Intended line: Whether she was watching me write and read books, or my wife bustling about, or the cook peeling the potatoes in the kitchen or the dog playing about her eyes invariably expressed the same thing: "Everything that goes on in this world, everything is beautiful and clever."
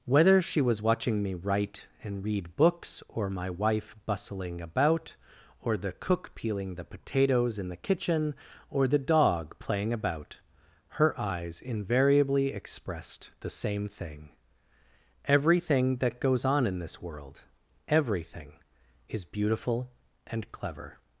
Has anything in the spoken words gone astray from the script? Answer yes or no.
no